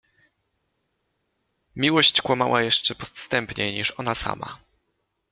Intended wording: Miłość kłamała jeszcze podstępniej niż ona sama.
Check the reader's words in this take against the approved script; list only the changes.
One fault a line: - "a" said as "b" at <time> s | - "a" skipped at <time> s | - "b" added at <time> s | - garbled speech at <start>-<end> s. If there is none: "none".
none